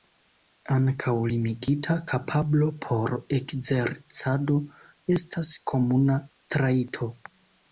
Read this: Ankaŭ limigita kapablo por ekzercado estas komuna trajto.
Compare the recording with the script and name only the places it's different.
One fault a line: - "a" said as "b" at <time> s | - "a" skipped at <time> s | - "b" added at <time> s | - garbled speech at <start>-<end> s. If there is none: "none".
none